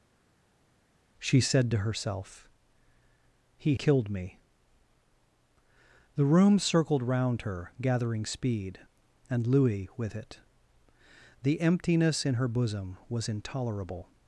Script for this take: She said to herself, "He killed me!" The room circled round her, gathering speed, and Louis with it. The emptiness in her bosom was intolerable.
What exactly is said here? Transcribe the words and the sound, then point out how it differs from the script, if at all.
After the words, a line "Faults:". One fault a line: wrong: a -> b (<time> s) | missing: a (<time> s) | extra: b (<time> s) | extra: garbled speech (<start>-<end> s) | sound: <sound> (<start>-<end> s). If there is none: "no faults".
She said to herself, "He killed me!" The room circled round her, gathering speed, and Louis with it. The emptiness in her bosom was intolerable.
Faults:
no faults